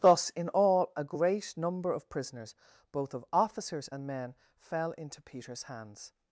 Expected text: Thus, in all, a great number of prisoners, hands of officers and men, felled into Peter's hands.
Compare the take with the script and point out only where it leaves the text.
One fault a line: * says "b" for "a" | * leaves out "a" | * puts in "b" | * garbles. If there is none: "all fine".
* says "both" for "hands"
* says "fell" for "felled"